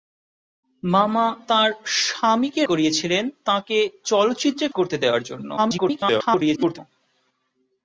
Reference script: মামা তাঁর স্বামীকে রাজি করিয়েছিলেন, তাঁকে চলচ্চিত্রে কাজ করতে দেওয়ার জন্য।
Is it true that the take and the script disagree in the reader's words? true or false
true